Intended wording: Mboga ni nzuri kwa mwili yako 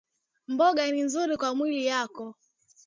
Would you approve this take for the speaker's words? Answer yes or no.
yes